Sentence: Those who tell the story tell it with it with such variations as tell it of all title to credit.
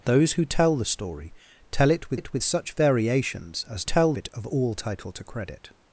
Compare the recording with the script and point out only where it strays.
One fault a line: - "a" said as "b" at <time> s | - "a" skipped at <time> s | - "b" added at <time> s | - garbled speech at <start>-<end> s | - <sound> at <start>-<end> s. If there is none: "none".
none